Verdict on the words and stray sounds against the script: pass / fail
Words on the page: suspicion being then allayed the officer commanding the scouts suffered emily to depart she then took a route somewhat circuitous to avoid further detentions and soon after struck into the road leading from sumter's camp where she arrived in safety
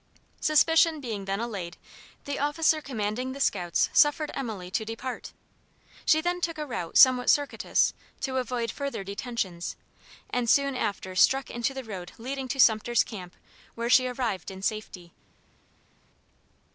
fail